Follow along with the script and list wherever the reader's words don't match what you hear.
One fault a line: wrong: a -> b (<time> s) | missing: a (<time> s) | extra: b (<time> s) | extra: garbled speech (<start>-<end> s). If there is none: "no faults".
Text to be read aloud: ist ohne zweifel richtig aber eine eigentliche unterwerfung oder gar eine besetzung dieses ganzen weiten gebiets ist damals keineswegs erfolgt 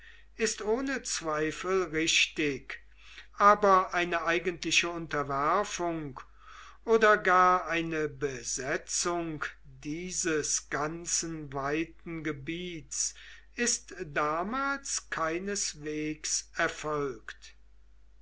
no faults